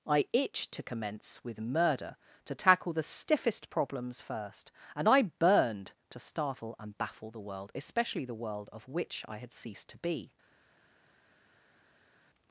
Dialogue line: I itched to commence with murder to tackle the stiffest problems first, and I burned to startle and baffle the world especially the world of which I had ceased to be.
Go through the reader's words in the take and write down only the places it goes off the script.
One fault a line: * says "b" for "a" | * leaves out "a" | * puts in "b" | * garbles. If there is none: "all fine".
all fine